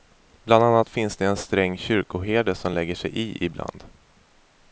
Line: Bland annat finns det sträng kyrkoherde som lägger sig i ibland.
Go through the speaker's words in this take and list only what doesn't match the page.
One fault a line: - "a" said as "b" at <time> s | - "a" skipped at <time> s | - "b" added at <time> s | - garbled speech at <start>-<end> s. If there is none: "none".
- "en" added at 1.2 s